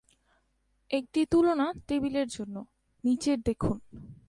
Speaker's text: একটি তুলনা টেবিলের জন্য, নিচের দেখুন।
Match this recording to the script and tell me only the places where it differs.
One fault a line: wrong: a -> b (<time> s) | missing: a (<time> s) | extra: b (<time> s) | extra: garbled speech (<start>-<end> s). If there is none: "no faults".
no faults